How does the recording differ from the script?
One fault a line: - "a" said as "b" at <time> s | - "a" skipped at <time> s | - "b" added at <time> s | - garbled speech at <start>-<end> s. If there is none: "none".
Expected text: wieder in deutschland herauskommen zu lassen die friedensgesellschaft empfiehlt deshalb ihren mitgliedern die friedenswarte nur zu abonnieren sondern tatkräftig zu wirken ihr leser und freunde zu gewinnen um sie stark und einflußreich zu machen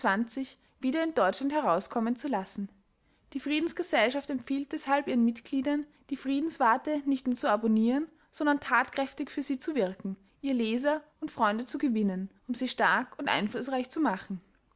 - "nicht" added at 7.0 s
- "für sie" added at 9.3 s